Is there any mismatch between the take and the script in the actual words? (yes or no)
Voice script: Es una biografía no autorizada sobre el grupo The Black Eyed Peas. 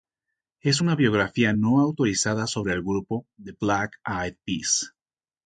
no